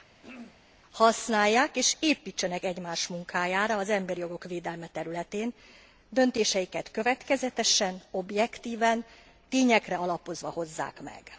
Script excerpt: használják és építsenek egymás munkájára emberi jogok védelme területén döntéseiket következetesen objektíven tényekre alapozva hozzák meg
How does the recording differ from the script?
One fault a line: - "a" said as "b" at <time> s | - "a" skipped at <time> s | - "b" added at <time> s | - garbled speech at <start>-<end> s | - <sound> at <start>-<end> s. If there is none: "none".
- throat clearing at 0.2-0.7 s
- "az" added at 3.8 s